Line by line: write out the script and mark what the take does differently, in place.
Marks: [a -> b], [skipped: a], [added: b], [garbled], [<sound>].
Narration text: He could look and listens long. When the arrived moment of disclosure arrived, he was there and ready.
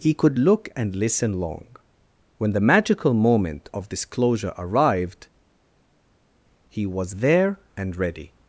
He could look and [listens -> listen] long. When the [arrived -> magical] moment of disclosure arrived, he was there and ready.